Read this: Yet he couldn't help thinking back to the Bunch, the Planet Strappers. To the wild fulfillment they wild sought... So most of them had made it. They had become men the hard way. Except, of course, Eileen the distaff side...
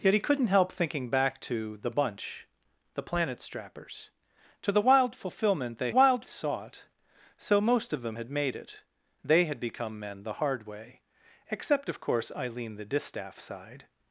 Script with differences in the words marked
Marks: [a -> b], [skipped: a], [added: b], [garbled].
Yet he couldn't help thinking back to the Bunch, the Planet Strappers. To the wild fulfillment they wild sought... So most of them had made it. They had become men the hard way. Except, of course, Eileen the distaff side...